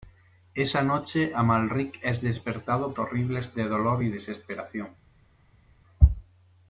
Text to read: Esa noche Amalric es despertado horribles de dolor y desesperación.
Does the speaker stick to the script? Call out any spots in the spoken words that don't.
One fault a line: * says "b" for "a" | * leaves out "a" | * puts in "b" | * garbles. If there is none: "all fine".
all fine